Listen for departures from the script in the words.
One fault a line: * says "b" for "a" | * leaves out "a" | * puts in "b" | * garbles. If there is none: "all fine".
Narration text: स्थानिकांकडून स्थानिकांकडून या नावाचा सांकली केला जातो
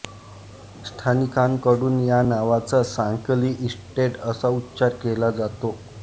* leaves out "स्थानिकांकडून"
* puts in "इस्टेट असा उच्चार"